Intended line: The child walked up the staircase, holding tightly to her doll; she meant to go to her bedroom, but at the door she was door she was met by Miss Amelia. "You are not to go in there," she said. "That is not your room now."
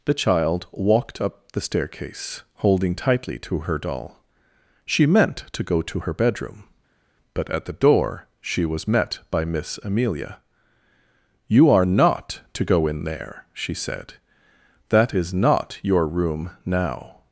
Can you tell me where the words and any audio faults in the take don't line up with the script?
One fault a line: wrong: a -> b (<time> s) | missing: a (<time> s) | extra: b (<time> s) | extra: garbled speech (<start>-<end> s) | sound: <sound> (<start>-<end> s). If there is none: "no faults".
missing: door she was (8.9 s)